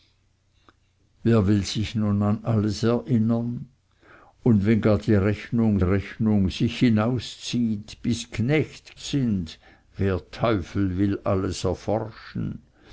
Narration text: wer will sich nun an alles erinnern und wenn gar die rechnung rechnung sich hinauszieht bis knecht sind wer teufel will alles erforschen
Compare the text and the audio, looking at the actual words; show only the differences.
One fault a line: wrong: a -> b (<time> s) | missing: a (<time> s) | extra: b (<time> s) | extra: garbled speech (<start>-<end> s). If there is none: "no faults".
no faults